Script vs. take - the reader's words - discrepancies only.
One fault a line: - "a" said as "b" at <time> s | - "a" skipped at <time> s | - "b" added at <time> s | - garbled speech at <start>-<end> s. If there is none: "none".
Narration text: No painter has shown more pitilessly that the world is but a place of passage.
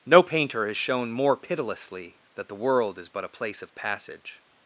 none